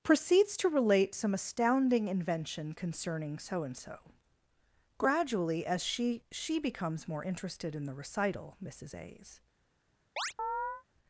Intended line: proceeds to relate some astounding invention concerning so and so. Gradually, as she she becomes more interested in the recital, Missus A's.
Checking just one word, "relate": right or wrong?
right